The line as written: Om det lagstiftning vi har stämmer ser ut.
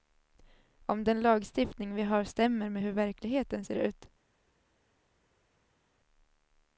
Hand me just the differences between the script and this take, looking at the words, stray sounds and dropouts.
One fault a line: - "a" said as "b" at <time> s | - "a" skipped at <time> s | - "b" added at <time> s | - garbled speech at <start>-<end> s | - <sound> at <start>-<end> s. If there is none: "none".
- "det" said as "den" at 1.0 s
- "med hur verkligheten" added at 2.7 s